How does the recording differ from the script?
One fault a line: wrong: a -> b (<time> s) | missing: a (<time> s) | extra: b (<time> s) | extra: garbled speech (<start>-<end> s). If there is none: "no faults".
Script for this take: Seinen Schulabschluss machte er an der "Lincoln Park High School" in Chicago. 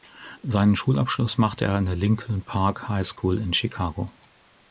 no faults